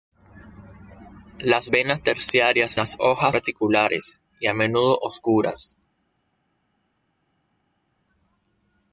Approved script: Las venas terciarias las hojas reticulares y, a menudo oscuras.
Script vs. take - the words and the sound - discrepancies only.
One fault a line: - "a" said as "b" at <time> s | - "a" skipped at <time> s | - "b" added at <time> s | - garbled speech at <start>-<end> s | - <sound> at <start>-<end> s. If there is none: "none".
none